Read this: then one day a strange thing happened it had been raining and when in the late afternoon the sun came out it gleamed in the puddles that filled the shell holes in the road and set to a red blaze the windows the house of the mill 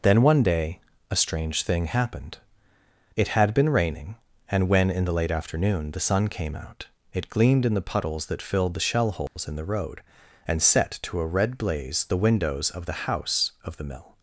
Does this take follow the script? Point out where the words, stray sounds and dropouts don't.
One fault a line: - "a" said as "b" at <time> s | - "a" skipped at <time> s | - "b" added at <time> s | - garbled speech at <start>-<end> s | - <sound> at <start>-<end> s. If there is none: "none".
- dropout at 9.3-9.4 s
- "of" added at 12.7 s